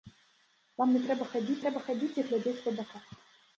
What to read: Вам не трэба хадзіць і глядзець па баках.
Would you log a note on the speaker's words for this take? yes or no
yes